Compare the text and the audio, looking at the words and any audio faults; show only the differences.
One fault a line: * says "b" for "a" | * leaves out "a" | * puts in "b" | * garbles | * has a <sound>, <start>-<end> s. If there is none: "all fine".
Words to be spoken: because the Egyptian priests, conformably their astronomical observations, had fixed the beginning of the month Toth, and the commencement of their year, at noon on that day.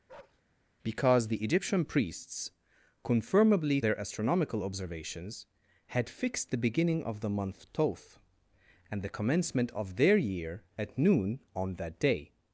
* has a bark, 0.1-0.4 s